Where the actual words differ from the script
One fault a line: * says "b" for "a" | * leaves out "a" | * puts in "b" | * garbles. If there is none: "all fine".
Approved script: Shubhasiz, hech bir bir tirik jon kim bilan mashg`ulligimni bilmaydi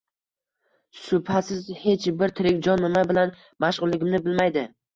* leaves out "bir"
* says "nima" for "kim"